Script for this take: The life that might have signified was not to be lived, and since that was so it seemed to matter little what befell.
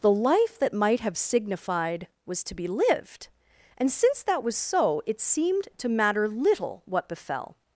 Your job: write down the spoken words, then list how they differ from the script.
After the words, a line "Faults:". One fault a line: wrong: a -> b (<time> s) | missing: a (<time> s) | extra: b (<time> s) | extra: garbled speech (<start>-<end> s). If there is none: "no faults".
The life that might have signified was to be lived, and since that was so it seemed to matter little what befell.
Faults:
missing: not (2.4 s)